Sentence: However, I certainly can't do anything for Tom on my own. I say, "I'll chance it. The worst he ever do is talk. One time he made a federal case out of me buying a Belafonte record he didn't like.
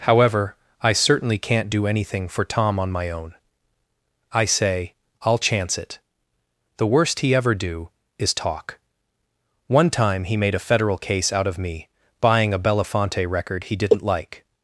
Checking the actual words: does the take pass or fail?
pass